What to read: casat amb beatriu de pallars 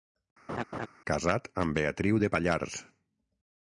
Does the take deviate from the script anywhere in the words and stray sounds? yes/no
yes